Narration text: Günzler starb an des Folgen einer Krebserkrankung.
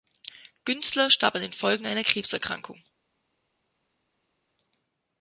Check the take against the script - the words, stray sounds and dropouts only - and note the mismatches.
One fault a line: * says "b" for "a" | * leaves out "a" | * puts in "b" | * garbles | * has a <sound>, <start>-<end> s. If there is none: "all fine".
* says "den" for "des"